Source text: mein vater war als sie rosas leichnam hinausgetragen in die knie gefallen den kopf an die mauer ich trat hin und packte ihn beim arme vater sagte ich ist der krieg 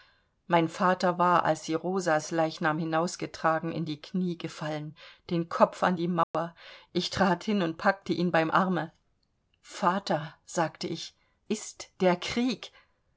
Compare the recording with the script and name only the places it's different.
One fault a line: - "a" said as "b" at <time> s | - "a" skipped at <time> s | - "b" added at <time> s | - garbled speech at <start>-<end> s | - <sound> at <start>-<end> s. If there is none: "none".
- dropout at 6.2-6.3 s